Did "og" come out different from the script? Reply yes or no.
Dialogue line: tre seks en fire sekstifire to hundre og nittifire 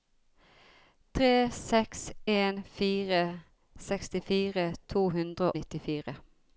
yes